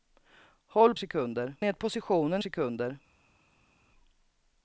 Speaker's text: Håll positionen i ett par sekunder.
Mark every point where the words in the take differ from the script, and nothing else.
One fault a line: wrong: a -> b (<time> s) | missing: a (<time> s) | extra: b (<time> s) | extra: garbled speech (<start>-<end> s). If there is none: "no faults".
wrong: positionen -> sekunder (1.0 s)
wrong: par -> positionen (1.8 s)